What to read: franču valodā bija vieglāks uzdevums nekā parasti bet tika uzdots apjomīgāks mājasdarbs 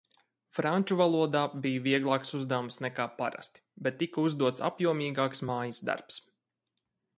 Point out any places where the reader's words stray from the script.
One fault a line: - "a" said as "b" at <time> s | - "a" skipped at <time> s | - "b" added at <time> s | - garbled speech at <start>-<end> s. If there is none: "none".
none